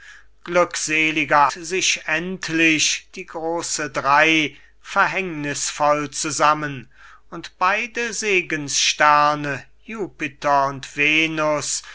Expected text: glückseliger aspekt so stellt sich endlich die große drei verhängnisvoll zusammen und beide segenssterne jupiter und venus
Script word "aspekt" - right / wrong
wrong